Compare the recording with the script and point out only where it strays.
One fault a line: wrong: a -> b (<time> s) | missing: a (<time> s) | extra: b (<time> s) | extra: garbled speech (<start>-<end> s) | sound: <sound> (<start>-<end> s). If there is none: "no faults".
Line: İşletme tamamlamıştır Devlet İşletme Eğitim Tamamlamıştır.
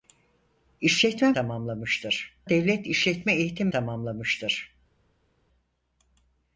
no faults